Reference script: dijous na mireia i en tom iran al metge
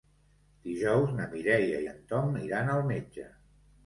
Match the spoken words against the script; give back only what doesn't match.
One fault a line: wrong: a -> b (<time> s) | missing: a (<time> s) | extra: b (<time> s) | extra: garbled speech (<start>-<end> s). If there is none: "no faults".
no faults